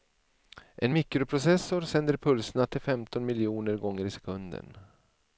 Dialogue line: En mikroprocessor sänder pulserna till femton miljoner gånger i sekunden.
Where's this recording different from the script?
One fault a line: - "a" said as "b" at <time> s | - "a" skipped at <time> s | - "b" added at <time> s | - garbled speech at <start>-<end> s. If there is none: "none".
none